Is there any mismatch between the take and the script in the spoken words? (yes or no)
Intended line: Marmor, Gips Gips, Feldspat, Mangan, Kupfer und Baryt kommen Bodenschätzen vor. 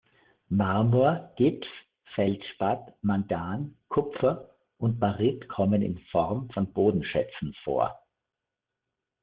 yes